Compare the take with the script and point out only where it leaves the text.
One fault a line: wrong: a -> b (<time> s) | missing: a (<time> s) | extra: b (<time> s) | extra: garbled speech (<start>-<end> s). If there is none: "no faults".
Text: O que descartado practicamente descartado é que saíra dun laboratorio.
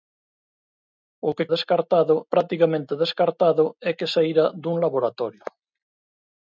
no faults